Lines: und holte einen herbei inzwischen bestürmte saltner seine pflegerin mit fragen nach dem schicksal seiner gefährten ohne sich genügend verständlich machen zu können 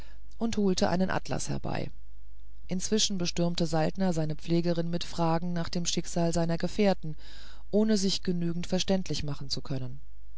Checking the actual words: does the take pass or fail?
fail